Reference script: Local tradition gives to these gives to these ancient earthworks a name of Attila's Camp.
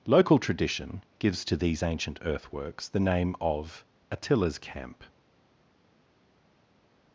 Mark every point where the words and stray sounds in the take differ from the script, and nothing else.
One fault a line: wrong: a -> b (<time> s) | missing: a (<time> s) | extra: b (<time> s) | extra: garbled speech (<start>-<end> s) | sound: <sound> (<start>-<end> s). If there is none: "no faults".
missing: gives to these (1.8 s)
wrong: a -> the (2.9 s)